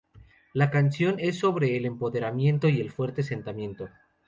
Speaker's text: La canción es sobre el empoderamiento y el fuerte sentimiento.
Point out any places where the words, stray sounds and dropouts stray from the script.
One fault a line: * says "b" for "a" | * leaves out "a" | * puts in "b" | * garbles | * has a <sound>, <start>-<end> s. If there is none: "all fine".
all fine